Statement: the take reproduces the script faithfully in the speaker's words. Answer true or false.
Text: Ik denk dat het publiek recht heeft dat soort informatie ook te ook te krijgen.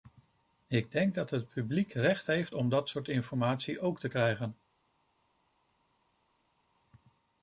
false